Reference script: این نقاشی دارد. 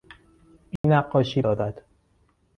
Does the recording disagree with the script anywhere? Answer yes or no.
no